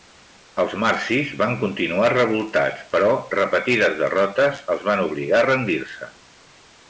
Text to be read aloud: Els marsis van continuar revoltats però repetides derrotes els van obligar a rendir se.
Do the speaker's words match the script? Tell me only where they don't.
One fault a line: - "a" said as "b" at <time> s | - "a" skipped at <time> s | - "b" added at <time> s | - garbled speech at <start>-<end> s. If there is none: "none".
none